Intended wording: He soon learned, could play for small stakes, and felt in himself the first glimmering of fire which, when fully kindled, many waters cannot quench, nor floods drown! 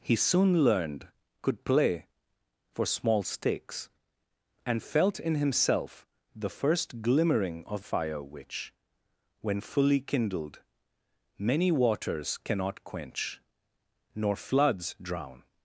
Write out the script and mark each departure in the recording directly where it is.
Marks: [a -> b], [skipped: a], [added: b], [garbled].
He soon learned, could play for small stakes, and felt in himself the first glimmering of fire which, when fully kindled, many waters cannot quench, nor floods drown!